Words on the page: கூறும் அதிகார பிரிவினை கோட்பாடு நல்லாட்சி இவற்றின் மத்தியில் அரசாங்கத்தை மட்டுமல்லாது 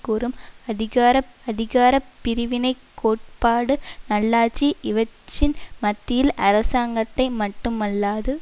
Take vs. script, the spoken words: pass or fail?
fail